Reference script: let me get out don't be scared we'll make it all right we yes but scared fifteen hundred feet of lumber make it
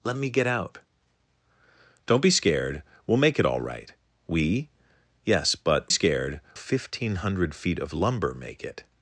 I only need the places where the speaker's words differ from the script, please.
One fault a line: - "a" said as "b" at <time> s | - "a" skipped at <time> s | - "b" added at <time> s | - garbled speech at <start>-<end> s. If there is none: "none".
none